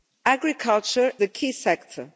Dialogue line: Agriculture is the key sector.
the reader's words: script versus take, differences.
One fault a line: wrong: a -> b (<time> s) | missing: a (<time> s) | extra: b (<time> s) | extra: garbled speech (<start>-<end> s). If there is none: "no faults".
missing: is (1.1 s)